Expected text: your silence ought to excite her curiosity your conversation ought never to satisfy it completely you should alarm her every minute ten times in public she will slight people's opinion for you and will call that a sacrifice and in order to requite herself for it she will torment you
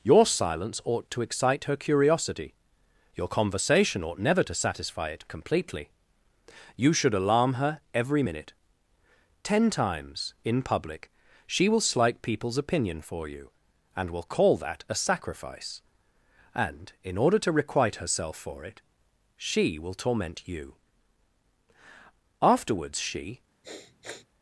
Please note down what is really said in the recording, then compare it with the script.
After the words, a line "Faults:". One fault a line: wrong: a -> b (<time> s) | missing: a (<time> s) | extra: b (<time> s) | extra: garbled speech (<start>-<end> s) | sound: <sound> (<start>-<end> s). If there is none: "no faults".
your silence ought to excite her curiosity your conversation ought never to satisfy it completely you should alarm her every minute ten times in public she will slight people's opinion for you and will call that a sacrifice and in order to requite herself for it she will torment you afterwards she
Faults:
extra: afterwards she (22.4 s)
sound: sniff (23.6-24.3 s)